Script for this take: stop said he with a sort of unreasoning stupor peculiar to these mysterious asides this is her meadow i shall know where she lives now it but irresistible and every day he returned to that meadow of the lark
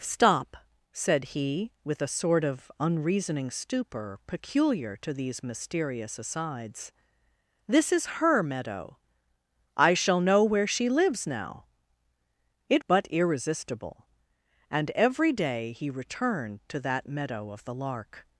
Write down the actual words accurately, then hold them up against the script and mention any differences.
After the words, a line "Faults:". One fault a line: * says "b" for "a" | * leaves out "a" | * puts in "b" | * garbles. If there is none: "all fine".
stop said he with a sort of unreasoning stupor peculiar to these mysterious asides this is her meadow i shall know where she lives now it but irresistible and every day he returned to that meadow of the lark
Faults:
all fine